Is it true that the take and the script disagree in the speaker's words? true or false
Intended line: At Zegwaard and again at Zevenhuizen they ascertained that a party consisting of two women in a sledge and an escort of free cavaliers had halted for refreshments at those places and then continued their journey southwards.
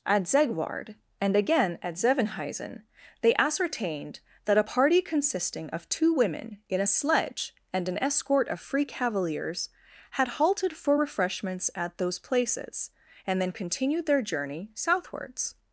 false